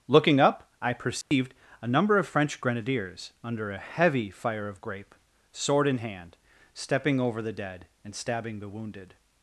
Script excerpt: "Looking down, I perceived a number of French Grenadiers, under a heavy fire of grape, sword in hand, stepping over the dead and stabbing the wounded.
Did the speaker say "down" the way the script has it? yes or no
no